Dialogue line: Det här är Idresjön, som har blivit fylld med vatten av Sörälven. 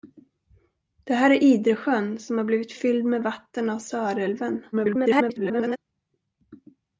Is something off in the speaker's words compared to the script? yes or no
yes